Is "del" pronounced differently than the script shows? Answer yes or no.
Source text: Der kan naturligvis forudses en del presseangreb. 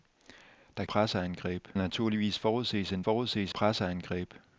yes